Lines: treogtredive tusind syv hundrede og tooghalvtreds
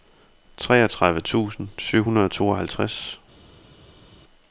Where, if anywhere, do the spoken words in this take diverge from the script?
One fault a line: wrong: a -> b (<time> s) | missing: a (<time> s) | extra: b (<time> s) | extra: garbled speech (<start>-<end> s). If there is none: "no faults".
no faults